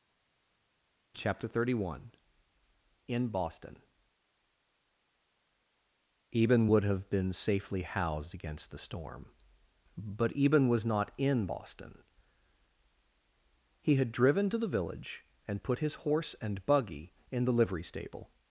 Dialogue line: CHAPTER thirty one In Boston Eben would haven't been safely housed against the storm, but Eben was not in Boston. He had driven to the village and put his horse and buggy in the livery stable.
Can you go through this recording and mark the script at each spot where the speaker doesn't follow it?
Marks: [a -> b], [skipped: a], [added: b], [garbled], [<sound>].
CHAPTER thirty one In Boston Eben would [haven't -> have] been safely housed against the storm, but Eben was not in Boston. He had driven to the village and put his horse and buggy in the livery stable.